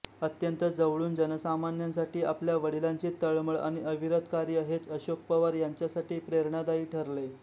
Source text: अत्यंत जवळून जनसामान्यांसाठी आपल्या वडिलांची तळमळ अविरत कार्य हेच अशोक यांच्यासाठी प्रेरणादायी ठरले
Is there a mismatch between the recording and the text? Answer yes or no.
yes